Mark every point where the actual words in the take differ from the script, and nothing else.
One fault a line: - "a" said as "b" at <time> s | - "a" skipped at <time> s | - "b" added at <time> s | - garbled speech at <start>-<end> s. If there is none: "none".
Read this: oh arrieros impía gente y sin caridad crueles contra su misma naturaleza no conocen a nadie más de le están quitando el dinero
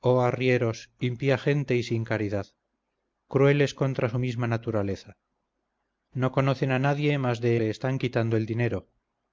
none